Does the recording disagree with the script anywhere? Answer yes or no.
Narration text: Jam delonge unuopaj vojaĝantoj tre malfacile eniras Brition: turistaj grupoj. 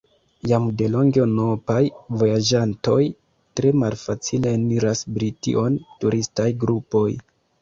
no